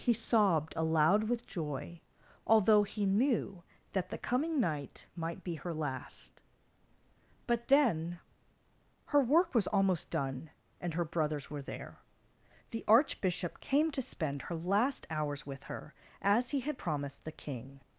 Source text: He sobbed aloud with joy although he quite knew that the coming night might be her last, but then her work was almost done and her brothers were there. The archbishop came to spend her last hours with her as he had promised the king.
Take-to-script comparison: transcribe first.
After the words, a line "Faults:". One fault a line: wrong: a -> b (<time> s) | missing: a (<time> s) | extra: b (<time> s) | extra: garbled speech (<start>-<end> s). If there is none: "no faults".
He sobbed aloud with joy although he knew that the coming night might be her last, but then her work was almost done and her brothers were there. The archbishop came to spend her last hours with her as he had promised the king.
Faults:
missing: quite (3.0 s)